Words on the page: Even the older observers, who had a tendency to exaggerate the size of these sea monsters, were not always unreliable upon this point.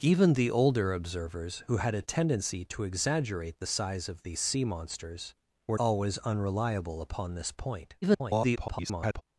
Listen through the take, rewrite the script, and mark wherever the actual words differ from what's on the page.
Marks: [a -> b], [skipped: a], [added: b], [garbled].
Even the older observers, who had a tendency to exaggerate the size of these sea monsters, were [skipped: not] always unreliable upon this point. [garbled]